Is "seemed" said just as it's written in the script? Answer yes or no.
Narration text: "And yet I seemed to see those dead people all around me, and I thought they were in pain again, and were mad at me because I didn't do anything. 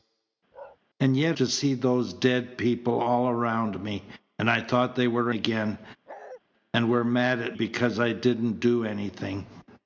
no